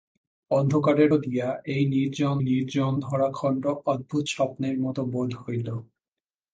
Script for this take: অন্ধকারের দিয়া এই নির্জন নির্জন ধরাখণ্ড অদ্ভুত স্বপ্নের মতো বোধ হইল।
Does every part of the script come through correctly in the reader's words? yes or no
yes